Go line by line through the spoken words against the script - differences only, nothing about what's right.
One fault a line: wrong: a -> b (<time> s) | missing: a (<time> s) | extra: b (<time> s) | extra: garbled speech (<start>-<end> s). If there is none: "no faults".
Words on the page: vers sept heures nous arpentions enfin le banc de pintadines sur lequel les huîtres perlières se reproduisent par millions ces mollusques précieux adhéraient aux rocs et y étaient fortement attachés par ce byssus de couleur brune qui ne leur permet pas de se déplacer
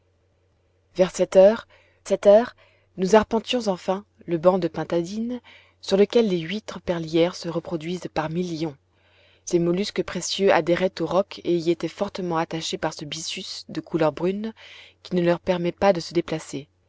extra: sept heures (2.1 s)